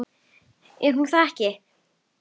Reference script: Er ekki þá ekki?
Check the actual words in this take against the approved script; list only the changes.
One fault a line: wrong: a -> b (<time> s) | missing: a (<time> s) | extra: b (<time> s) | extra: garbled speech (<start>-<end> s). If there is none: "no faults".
wrong: ekki -> hún (1.0 s)